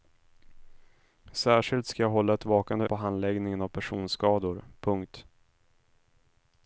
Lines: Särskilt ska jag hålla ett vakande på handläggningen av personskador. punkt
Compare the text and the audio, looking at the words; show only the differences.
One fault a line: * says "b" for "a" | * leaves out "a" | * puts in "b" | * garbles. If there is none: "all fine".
all fine